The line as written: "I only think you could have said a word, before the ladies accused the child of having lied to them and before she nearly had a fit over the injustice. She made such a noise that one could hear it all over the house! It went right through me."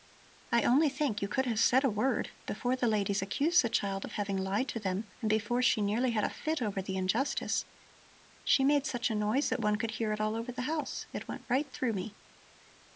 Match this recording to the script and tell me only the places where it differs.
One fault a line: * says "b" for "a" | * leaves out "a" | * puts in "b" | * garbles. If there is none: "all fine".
all fine